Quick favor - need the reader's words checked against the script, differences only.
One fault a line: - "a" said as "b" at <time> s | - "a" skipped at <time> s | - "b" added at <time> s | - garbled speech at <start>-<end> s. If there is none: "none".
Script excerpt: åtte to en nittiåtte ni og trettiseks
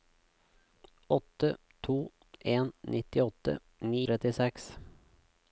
none